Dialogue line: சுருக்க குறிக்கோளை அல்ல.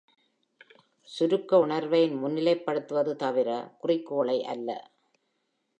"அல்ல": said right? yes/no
yes